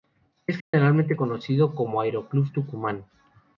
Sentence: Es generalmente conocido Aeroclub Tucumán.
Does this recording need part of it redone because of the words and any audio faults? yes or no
yes